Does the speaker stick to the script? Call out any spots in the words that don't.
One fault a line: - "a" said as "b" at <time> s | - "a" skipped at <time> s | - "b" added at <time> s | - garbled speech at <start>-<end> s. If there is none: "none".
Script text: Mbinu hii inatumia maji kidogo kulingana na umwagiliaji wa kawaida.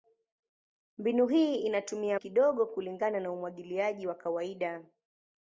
- "maji" skipped at 2.2 s